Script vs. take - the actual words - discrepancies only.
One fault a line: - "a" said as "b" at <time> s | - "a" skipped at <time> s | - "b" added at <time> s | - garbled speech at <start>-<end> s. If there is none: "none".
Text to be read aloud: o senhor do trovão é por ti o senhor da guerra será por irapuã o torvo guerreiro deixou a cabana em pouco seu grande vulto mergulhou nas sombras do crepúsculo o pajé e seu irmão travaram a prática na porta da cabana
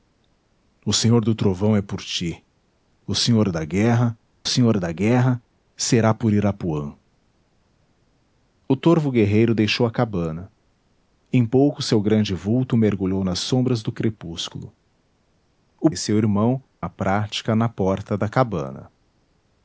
- "senhor da guerra" added at 4.4 s
- "pajé" skipped at 15.9 s
- "travaram" skipped at 16.6 s